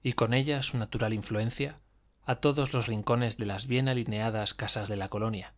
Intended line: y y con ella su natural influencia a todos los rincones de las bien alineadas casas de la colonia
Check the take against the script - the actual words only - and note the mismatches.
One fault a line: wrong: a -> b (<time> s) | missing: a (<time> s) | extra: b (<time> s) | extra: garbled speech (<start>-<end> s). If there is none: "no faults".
missing: y (0.1 s)